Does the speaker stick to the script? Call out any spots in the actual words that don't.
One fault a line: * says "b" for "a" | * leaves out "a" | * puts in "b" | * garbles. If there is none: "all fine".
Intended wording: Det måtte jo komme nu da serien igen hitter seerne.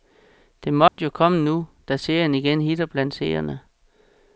* puts in "blandt"